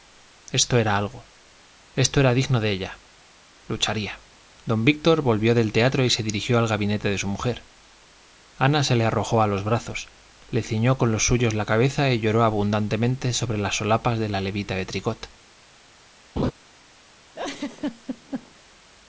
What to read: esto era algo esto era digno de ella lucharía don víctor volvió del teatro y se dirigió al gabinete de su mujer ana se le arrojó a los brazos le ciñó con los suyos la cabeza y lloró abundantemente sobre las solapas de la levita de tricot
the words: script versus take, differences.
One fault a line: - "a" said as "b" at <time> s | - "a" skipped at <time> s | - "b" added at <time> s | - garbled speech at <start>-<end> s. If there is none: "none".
none